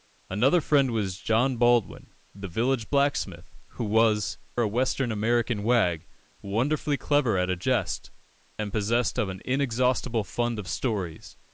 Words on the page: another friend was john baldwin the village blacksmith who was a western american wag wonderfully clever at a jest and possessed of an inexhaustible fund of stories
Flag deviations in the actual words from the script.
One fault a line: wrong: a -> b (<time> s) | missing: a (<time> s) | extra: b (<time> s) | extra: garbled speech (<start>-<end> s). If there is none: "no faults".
no faults